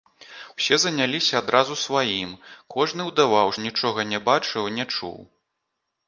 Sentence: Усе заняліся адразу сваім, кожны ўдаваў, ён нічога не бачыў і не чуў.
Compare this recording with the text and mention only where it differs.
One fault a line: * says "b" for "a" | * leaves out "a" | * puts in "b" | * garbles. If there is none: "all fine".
all fine